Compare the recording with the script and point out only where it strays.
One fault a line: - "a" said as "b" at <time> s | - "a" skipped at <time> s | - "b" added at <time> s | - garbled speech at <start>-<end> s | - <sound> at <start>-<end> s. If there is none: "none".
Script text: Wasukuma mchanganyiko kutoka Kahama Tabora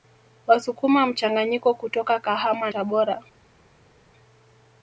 none